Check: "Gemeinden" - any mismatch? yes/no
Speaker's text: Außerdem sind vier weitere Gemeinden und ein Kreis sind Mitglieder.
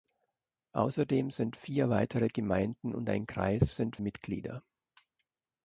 no